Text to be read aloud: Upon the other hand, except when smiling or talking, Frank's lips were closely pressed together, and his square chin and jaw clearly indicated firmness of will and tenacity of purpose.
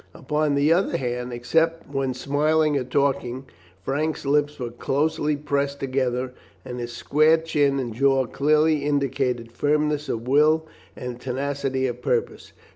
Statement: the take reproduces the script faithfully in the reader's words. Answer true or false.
true